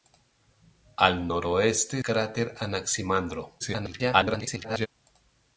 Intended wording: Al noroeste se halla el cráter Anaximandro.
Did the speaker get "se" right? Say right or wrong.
wrong